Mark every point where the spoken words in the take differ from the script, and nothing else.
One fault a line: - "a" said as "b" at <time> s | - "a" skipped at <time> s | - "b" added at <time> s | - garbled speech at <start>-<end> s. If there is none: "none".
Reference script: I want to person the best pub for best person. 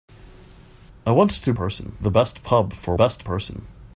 none